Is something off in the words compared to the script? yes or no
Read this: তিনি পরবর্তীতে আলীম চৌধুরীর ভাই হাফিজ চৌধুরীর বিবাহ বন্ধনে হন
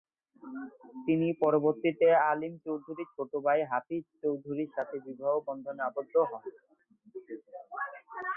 yes